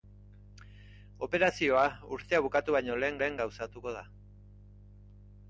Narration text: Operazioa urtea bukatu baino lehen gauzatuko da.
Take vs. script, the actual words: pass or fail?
fail